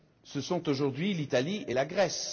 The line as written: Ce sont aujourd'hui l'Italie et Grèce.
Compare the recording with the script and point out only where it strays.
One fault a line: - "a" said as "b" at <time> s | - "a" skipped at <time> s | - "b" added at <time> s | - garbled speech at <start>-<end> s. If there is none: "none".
- "la" added at 1.7 s